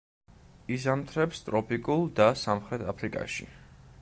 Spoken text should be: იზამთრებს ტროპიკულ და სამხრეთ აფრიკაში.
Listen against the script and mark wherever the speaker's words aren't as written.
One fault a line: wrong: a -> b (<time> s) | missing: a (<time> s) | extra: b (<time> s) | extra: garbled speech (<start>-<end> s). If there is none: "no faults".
no faults